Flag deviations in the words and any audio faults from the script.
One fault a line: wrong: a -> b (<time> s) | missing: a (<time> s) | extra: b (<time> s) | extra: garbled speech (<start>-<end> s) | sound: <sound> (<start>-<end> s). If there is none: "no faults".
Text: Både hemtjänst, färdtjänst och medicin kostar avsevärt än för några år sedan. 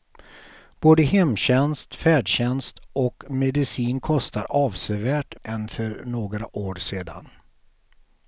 no faults